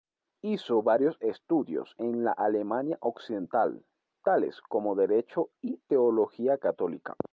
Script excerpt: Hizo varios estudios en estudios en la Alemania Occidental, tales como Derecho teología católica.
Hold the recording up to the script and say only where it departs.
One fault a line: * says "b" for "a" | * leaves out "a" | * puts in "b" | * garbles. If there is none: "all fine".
* leaves out "estudios en"
* puts in "y"